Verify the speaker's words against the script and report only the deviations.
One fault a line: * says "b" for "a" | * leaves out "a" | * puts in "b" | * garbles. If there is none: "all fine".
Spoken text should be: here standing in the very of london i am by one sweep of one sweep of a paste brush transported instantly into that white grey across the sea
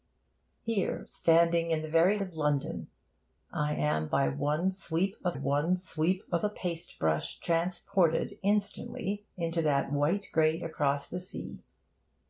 all fine